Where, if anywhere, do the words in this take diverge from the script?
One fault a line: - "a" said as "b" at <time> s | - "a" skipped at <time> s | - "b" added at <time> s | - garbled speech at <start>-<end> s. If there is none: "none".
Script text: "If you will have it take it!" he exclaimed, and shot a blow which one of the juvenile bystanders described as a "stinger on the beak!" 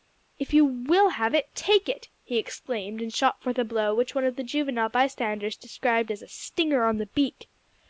- "forth" added at 3.4 s